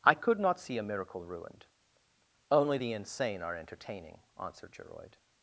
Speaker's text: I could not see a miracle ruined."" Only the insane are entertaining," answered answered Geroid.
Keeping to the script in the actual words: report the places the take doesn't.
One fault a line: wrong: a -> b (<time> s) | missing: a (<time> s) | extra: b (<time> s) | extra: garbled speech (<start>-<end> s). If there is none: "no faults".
missing: answered (4.7 s)